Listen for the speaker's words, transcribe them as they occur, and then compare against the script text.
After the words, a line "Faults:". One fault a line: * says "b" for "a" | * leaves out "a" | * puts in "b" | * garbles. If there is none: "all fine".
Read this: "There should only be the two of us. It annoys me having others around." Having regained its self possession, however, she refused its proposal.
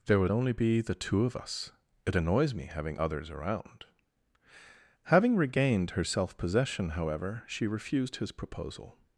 "There would only be the two of us. It annoys me having others around." Having regained her self possession, however, she refused his proposal.
Faults:
* says "would" for "should"
* says "her" for "its"
* says "his" for "its"